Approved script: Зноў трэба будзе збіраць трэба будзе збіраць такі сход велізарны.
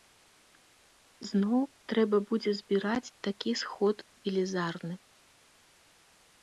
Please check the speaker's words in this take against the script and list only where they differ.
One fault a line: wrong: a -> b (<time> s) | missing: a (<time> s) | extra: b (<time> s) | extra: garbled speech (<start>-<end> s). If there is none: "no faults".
missing: трэба будзе збіраць (3.1 s)